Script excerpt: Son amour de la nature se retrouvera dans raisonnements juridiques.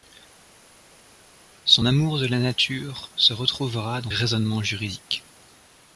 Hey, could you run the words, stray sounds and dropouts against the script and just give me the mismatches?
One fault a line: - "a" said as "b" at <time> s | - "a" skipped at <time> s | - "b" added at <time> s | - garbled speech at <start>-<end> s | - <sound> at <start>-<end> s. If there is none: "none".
none